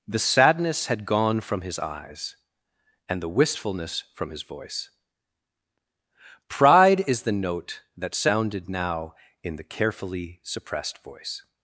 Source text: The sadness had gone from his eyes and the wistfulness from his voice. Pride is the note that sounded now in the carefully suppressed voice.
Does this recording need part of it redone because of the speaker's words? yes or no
no